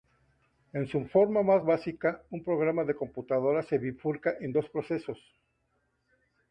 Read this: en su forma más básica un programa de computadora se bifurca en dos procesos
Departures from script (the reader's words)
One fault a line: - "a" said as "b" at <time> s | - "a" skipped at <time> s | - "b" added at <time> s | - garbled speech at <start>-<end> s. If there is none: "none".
none